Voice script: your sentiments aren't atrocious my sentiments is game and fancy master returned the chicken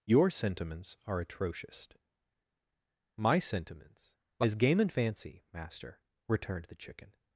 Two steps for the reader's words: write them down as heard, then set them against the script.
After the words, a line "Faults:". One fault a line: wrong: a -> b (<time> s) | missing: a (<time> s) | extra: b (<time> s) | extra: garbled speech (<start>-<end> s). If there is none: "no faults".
your sentiments are atrocious my sentiments is game and fancy master returned the chicken
Faults:
wrong: aren't -> are (1.1 s)